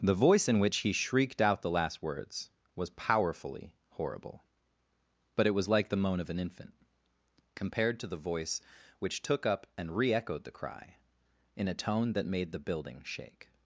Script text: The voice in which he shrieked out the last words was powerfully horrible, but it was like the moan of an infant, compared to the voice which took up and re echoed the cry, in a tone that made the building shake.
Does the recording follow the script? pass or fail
pass